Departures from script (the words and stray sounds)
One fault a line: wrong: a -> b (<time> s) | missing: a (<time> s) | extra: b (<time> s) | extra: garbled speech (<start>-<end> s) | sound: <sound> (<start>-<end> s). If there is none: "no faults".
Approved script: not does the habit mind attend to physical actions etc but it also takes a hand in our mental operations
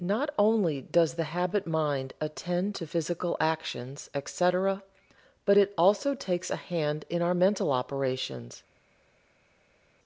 extra: only (0.4 s)